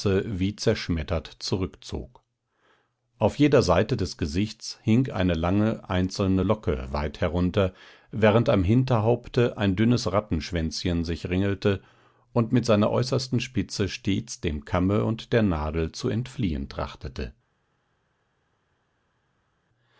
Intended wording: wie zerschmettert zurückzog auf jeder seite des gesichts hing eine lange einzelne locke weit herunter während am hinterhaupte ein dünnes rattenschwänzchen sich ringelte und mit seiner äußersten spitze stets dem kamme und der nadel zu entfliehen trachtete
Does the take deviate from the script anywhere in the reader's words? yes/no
no